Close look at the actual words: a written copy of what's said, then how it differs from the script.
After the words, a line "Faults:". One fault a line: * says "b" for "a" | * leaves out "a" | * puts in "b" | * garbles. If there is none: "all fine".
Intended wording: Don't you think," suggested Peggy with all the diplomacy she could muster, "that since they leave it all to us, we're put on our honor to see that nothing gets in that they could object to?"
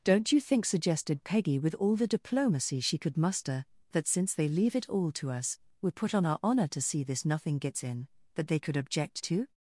Don't you think," suggested Peggy with all the diplomacy she could muster, "that since they leave it all to us, we're put on our honor to see this nothing gets in that they could object to?"
Faults:
* says "this" for "that"